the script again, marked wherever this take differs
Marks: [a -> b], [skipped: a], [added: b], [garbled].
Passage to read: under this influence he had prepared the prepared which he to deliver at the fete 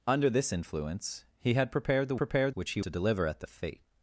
under this influence he had prepared the prepared which he to deliver at the fete